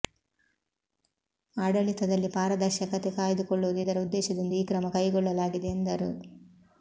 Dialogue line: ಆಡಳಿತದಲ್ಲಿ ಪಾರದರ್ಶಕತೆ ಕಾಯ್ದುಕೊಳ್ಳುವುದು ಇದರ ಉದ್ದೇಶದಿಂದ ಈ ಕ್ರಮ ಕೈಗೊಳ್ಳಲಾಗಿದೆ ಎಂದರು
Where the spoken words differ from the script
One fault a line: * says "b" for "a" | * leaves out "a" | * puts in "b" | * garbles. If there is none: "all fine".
all fine